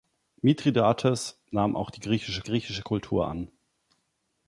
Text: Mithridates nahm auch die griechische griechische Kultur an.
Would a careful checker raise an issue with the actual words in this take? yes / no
no